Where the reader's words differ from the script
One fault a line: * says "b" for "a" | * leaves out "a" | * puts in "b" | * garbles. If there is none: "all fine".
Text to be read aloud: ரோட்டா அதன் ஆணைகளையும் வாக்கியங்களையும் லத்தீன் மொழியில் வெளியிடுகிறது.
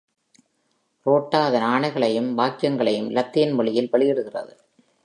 all fine